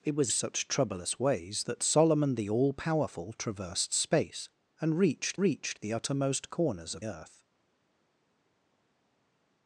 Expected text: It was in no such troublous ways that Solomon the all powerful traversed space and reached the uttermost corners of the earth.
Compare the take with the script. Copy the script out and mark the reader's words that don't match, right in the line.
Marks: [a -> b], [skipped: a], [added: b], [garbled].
It was [skipped: in no] such troublous ways that Solomon the all powerful traversed space and reached [added: reached] the uttermost corners of [skipped: the] earth.